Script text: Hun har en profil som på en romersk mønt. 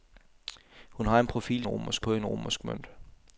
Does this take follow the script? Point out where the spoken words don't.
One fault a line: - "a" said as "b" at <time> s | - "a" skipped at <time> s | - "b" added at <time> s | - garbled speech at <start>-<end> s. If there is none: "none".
- "som" said as "romersk" at 1.7 s